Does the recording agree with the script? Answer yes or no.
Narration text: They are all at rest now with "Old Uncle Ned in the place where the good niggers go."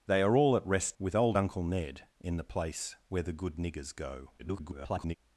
no